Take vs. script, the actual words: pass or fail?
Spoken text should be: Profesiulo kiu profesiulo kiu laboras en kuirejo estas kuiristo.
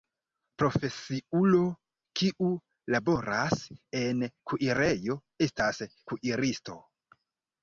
fail